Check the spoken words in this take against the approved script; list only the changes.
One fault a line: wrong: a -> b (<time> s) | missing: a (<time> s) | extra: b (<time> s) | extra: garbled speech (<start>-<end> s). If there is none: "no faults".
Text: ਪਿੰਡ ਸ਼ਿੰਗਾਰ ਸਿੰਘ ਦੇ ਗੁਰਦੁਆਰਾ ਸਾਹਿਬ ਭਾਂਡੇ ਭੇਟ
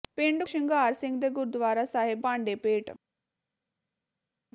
no faults